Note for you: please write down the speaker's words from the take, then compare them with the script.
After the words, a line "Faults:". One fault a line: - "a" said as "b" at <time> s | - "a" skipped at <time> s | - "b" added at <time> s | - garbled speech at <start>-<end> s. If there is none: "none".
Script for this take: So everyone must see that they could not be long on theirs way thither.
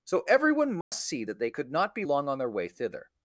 So everyone must see that they could not be long on their way thither.
Faults:
- "theirs" said as "their" at 2.4 s